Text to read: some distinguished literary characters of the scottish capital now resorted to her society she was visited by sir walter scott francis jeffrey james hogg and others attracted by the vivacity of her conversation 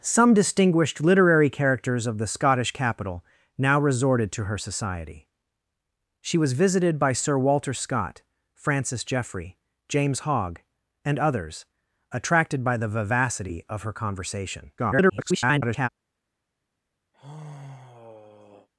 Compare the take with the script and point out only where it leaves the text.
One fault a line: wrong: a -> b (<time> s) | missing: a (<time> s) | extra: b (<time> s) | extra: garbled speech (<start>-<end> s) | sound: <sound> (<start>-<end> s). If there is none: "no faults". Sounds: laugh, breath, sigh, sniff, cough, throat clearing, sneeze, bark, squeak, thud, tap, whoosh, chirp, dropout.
extra: garbled speech (14.8-15.9 s)
sound: sigh (17.1-18.7 s)